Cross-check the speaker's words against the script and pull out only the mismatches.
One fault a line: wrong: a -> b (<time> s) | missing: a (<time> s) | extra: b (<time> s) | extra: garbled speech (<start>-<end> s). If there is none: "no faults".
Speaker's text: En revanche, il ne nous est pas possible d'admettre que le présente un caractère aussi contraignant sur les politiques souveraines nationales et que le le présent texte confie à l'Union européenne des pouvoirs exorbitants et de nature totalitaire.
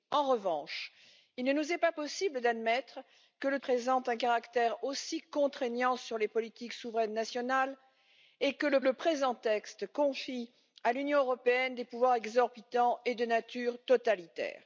no faults